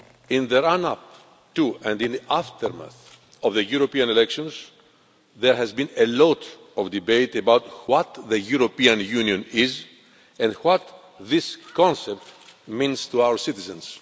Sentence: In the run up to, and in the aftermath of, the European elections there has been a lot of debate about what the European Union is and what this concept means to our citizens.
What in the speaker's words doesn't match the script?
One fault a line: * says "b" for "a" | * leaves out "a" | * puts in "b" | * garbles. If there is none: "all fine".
all fine